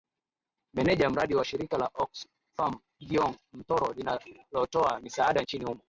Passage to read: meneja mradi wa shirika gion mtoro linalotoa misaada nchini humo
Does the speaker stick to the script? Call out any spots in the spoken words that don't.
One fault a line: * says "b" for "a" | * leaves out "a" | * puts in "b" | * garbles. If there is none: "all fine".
* puts in "la oxfam"